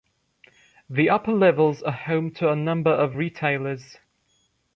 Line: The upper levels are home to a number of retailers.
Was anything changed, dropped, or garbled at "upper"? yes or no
no